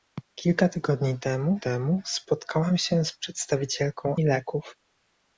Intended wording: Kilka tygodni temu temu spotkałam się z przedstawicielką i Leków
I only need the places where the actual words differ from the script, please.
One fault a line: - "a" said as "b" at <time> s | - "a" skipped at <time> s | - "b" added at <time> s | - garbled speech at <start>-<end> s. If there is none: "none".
none